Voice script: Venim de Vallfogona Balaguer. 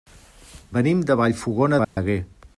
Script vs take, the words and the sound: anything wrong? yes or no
yes